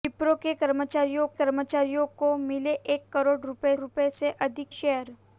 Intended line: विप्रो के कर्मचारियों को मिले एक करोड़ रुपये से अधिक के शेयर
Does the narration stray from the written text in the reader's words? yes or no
yes